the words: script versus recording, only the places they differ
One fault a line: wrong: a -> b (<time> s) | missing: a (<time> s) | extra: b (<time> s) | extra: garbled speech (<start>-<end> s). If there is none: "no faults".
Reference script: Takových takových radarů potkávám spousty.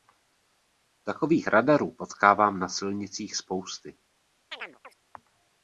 missing: takových (1.5 s)
extra: na silnicích (2.6 s)